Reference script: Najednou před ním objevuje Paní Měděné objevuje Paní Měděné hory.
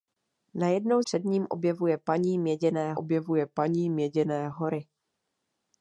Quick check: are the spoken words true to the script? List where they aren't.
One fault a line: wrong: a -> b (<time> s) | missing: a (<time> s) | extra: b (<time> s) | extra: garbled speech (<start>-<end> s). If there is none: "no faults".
no faults